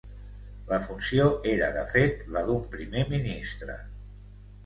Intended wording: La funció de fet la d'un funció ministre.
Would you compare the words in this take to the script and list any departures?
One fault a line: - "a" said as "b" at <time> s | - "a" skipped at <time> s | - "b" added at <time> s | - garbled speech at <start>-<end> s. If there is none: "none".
- "era" added at 1.5 s
- "funció" said as "primer" at 2.8 s